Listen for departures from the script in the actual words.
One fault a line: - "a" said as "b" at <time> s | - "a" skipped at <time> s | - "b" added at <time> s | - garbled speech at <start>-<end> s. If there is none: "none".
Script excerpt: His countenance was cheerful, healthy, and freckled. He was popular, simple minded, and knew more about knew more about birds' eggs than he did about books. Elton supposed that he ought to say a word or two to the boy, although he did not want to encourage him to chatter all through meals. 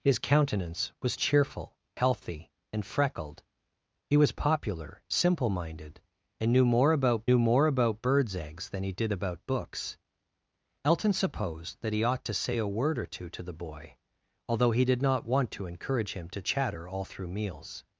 none